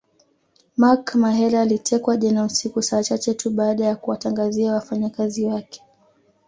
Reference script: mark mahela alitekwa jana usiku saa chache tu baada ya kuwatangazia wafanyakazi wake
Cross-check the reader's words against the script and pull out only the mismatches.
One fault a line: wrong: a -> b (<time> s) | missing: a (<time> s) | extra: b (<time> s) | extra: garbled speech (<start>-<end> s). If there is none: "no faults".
no faults